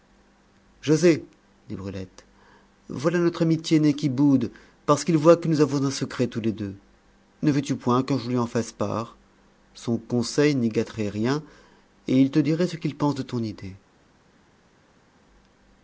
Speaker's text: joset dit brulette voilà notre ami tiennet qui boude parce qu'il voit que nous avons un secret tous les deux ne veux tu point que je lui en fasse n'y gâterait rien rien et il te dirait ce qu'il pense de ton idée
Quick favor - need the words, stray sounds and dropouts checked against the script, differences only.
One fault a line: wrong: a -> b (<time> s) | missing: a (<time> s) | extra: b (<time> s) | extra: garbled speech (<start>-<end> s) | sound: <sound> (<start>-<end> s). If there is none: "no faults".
extra: part son conseil (8.7 s)
missing: rien (11.4 s)